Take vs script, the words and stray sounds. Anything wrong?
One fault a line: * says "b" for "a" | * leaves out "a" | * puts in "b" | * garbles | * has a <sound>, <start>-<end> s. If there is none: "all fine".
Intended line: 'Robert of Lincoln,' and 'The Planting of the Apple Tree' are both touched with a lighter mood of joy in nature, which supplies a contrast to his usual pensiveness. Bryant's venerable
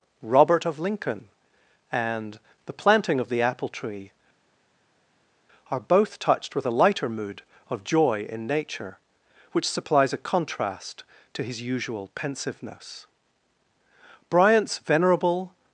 all fine